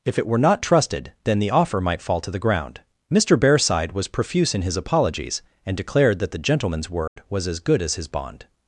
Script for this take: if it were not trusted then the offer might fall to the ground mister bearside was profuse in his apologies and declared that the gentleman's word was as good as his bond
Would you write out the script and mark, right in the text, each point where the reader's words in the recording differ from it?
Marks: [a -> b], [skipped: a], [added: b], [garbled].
if it were not trusted then the offer might fall to the ground mister bearside was profuse in his apologies and declared that the gentleman's word was as good as his bond